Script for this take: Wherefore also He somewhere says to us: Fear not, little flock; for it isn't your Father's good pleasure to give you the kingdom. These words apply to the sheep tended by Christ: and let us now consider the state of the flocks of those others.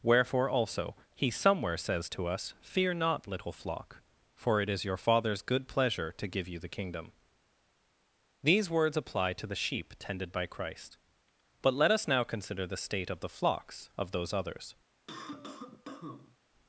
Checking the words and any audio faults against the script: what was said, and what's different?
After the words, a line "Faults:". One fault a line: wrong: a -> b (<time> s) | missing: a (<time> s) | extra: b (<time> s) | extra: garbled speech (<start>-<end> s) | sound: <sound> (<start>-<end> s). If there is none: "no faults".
Wherefore also He somewhere says to us: Fear not, little flock; for it is your Father's good pleasure to give you the kingdom. These words apply to the sheep tended by Christ: but let us now consider the state of the flocks of those others.
Faults:
wrong: isn't -> is (4.7 s)
wrong: and -> but (11.6 s)
sound: cough (15.1-16.4 s)